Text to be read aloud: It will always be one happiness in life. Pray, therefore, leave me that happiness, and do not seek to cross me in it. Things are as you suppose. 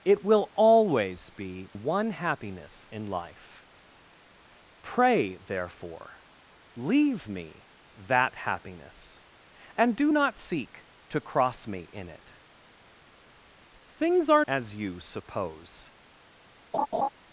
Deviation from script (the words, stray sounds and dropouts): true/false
true